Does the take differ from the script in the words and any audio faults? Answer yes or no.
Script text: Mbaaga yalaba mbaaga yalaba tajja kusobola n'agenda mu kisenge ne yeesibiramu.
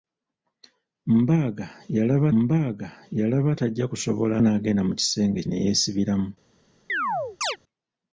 yes